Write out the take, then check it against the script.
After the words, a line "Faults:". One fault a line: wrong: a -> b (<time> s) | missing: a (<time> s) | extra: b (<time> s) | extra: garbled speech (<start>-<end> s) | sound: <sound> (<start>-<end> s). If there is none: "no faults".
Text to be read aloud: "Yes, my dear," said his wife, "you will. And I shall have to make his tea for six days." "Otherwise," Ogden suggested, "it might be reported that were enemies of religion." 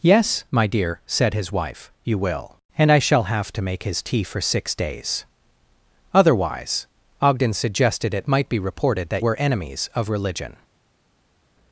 "Yes, my dear," said his wife, "you will. And I shall have to make his tea for six days." "Otherwise," Ogden suggested, "it might be reported that were enemies of religion."
Faults:
no faults